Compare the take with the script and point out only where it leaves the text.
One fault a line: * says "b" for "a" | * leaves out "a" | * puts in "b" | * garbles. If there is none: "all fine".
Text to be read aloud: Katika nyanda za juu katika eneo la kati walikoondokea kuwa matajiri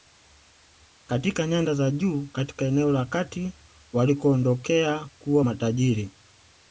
all fine